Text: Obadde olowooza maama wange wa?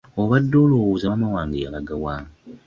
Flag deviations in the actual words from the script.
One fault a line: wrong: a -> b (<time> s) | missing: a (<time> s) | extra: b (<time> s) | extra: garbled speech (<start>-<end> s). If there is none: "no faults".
extra: yalaga (1.6 s)